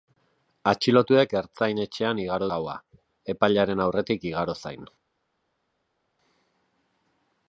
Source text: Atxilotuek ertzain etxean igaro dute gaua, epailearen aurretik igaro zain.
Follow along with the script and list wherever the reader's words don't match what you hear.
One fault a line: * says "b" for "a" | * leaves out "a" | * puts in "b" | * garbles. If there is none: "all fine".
* leaves out "dute"